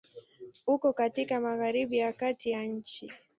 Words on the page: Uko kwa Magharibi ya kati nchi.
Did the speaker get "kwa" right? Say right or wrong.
wrong